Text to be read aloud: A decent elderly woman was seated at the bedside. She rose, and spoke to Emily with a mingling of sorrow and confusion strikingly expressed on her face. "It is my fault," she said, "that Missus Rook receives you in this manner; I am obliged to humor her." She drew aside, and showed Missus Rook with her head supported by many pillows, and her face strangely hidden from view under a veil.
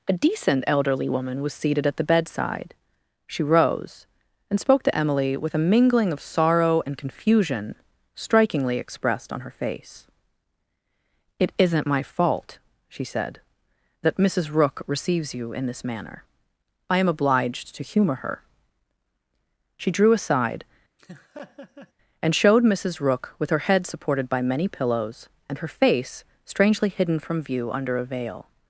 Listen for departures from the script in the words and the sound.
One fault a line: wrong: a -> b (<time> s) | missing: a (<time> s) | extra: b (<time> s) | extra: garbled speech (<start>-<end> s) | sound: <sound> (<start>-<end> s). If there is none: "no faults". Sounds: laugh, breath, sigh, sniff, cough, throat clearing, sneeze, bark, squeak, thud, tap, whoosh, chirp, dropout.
wrong: is -> isn't (11.6 s)
sound: laugh (21.0-21.9 s)